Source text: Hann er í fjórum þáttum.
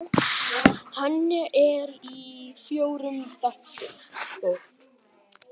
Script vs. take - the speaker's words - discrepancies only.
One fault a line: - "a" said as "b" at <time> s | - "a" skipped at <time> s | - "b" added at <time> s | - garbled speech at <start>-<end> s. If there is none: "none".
none